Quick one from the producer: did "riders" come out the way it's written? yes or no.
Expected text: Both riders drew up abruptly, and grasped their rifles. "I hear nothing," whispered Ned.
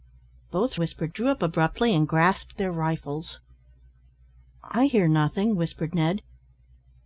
no